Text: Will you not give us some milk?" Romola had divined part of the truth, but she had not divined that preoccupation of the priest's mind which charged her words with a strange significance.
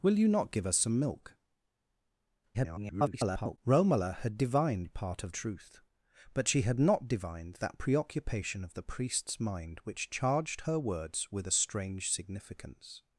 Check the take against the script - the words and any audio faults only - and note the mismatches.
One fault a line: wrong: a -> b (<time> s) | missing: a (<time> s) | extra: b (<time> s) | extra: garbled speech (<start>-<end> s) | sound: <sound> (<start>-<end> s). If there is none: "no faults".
extra: garbled speech (2.5-3.6 s)
missing: the (5.3 s)